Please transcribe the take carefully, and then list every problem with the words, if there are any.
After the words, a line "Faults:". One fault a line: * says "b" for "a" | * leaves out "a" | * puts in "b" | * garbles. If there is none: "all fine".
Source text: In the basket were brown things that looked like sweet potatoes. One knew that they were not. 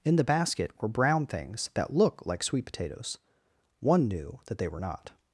In the basket were brown things that look like sweet potatoes. One knew that they were not.
Faults:
* says "look" for "looked"